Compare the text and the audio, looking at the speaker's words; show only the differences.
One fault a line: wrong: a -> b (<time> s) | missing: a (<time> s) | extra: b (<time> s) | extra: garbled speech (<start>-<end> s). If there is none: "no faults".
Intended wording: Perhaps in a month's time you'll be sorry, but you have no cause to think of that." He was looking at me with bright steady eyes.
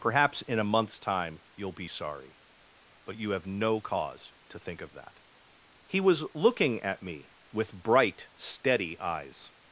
no faults